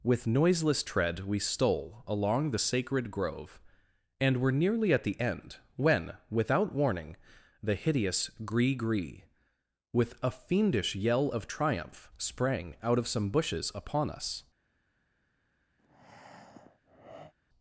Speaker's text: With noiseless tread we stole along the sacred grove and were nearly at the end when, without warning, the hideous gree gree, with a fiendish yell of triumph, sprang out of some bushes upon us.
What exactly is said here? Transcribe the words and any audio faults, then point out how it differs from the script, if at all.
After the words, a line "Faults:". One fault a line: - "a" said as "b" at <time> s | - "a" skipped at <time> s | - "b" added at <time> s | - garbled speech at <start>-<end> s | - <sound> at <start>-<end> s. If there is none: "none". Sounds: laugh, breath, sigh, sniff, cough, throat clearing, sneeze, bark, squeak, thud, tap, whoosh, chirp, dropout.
With noiseless tread we stole along the sacred grove and were nearly at the end when, without warning, the hideous gree gree, with a fiendish yell of triumph, sprang out of some bushes upon us.
Faults:
- breath at 15.8-17.3 s